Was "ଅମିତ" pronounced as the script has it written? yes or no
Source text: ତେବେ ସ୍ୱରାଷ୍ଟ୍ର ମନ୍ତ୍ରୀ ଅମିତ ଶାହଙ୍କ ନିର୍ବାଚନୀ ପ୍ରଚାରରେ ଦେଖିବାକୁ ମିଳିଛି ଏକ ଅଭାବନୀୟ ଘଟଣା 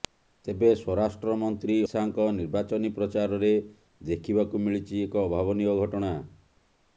no